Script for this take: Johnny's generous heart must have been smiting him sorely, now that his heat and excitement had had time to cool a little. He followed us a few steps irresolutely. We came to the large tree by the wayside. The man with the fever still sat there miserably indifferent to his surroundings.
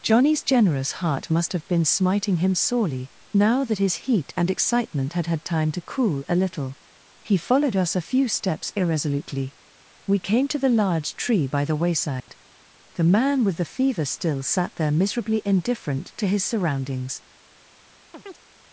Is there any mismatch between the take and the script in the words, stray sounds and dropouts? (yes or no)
yes